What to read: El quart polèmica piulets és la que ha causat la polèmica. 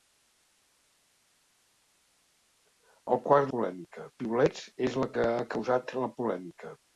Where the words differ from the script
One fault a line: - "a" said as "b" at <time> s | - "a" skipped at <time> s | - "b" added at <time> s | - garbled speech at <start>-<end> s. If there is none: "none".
none